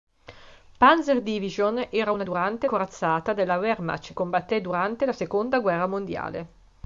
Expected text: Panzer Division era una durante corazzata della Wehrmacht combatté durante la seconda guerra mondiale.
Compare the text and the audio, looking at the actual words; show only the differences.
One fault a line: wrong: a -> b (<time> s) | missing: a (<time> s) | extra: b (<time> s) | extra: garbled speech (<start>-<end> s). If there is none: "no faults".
no faults